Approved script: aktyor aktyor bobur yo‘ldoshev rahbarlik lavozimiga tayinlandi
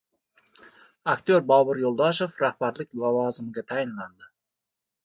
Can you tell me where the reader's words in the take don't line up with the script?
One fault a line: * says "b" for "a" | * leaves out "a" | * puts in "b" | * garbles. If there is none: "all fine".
* leaves out "aktyor"